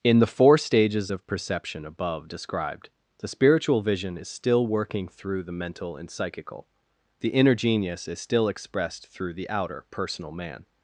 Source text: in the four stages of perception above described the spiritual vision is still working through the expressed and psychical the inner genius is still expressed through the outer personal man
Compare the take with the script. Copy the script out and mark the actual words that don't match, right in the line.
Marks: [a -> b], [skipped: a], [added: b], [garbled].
in the four stages of perception above described the spiritual vision is still working through the [expressed -> mental] and psychical the inner genius is still expressed through the outer personal man